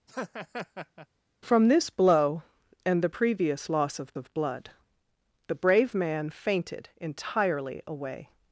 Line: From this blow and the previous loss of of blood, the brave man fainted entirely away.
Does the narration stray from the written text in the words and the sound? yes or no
yes